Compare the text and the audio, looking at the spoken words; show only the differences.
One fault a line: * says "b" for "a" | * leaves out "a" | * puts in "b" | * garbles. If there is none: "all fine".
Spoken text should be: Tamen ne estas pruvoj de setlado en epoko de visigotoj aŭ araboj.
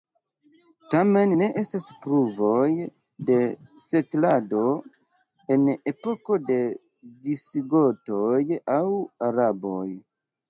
all fine